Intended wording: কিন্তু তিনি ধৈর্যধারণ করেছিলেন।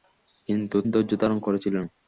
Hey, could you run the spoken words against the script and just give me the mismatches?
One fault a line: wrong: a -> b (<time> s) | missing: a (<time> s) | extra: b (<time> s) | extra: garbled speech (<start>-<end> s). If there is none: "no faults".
missing: তিনি (0.8 s)